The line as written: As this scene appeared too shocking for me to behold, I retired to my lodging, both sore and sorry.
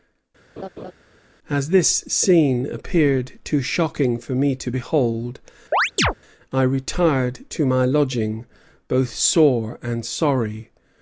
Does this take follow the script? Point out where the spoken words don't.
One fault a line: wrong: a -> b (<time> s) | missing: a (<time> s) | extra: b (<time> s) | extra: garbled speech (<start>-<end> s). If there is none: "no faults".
no faults